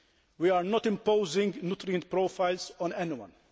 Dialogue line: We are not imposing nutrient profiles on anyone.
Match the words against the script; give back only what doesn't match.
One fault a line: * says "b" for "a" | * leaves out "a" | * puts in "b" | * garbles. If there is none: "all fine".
all fine